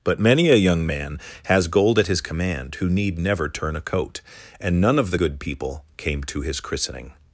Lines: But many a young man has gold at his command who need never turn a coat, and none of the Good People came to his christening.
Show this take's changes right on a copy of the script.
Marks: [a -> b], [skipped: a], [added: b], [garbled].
But many a young man has gold at his command who need never turn a coat, and none of the Good People came to his christening.